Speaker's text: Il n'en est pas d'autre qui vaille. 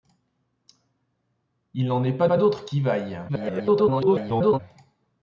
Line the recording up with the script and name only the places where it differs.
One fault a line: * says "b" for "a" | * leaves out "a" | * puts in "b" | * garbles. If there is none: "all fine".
* puts in "pas"
* garbles